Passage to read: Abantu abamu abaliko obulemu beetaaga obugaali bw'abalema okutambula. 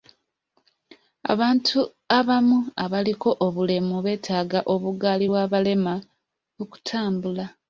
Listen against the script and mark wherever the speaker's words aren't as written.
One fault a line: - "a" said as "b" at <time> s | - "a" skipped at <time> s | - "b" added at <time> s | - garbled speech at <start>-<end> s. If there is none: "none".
none